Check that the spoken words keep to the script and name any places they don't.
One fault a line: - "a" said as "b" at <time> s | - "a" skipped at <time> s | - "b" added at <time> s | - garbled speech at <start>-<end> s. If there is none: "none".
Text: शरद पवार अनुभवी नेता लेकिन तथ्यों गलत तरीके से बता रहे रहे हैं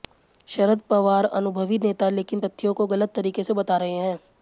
- "को" added at 2.7 s
- "रहे" skipped at 3.9 s